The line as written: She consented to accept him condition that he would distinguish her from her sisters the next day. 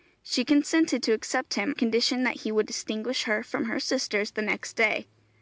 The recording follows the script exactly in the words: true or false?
true